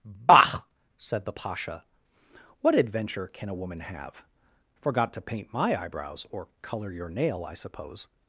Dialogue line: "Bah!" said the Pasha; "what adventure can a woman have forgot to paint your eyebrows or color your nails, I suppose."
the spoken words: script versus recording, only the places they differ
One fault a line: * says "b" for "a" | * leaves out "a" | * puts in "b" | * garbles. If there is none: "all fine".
* says "my" for "your"
* says "nail" for "nails"